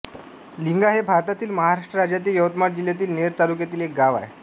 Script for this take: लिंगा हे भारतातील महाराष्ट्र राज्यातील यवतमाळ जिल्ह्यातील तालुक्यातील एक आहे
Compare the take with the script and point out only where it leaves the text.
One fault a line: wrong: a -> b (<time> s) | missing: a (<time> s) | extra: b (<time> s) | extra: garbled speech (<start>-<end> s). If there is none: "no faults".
extra: नेर (3.1 s)
extra: गाव (4.0 s)